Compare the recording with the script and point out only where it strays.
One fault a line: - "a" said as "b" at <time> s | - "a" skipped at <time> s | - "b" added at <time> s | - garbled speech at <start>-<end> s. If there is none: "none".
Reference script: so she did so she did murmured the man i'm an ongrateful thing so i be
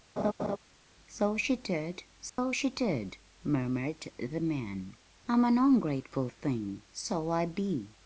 none